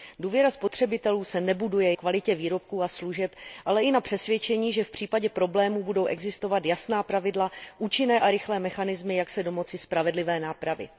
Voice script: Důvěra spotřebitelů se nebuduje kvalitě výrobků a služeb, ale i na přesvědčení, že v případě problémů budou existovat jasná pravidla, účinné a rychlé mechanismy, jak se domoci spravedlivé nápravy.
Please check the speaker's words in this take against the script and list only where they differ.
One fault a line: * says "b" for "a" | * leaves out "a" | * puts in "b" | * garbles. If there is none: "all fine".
all fine